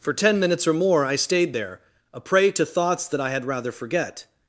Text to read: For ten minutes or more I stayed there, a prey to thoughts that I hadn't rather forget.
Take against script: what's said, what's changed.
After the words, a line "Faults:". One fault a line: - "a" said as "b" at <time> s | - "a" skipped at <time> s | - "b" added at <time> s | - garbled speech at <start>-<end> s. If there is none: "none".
For ten minutes or more I stayed there, a prey to thoughts that I had rather forget.
Faults:
- "hadn't" said as "had" at 3.3 s